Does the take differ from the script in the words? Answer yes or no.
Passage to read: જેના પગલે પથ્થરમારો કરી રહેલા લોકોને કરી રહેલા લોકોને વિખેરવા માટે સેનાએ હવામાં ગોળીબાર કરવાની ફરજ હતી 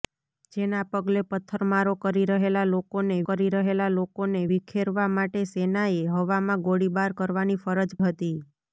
no